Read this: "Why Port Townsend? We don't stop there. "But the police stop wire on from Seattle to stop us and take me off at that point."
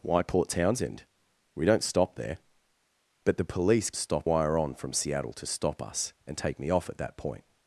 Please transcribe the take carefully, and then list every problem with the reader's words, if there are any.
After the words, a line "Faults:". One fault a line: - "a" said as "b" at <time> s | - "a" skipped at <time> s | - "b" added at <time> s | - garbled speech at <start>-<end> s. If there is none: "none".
"Why Port Townsend? We don't stop there. "But the police stop wire on from Seattle to stop us and take me off at that point."
Faults:
none